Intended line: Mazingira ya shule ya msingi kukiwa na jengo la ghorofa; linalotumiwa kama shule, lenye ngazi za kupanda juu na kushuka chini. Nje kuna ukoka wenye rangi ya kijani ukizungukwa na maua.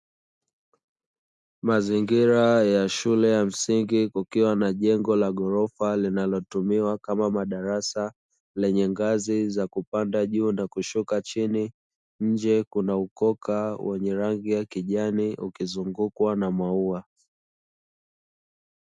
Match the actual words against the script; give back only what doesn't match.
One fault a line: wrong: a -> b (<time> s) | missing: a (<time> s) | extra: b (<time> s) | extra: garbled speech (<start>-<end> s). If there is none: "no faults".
wrong: shule -> madarasa (7.3 s)